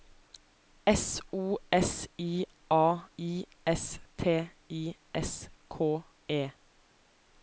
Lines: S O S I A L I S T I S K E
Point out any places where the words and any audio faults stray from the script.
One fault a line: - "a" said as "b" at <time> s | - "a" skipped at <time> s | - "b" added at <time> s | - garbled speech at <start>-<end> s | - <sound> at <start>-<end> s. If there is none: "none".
- "L" skipped at 3.1 s